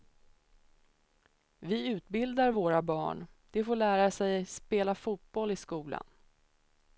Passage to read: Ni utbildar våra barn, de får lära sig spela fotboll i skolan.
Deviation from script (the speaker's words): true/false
true